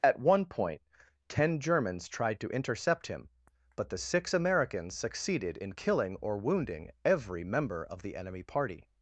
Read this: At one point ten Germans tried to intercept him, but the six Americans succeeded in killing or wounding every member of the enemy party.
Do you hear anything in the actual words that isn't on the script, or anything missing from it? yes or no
no